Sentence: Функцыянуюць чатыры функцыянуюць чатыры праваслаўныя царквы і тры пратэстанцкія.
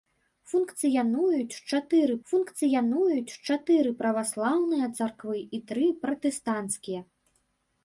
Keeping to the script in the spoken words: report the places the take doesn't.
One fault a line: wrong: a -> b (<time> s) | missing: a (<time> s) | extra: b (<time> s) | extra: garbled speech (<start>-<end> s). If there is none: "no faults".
no faults